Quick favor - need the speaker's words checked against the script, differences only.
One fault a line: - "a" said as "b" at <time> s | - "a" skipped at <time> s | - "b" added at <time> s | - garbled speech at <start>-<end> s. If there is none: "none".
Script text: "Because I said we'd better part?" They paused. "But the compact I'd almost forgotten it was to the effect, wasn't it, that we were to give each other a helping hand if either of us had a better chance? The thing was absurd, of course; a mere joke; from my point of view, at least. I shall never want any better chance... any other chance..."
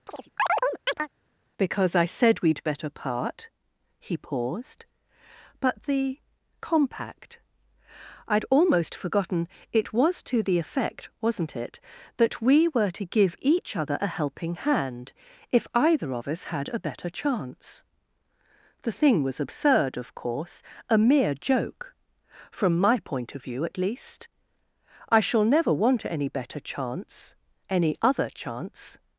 - "They" said as "He" at 4.0 s